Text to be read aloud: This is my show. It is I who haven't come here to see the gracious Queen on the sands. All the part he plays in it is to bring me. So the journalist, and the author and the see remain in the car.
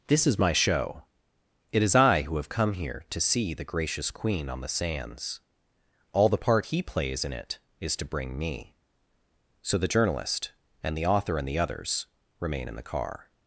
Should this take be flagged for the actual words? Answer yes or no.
yes